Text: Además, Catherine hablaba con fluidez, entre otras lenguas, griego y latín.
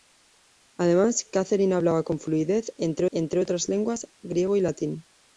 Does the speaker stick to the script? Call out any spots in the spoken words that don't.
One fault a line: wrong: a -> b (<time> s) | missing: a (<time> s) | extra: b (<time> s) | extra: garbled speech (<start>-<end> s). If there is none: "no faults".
extra: entre (3.1 s)